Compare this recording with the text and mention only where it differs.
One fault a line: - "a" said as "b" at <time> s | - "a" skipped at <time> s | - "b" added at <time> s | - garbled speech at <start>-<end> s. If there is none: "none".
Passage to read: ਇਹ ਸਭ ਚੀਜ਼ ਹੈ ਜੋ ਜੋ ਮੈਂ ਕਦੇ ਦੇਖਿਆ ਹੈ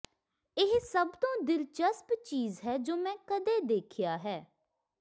- "ਤੋਂ ਦਿਲਚਸਪ" added at 1.2 s
- "ਜੋ" skipped at 3.0 s